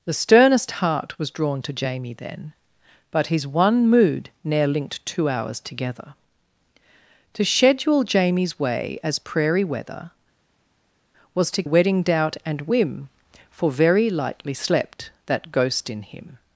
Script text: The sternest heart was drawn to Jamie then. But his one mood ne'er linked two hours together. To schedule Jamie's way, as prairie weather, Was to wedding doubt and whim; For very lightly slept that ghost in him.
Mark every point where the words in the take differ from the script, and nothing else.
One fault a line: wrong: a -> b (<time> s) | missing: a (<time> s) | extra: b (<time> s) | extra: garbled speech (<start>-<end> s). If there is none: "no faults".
no faults